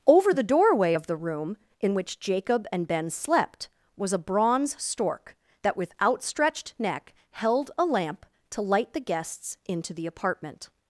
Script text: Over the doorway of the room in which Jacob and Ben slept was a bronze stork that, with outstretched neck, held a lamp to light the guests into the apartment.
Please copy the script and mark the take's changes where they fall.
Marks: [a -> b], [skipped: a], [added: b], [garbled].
Over the doorway of the room in which Jacob and Ben slept was a bronze stork that, with outstretched neck, held a lamp to light the guests into the apartment.